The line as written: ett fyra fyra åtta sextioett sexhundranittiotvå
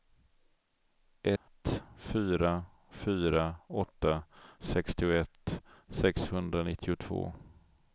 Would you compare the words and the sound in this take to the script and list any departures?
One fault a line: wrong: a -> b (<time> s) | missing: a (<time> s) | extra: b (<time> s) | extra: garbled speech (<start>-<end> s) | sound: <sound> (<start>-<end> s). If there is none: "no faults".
sound: dropout (1.4-1.5 s)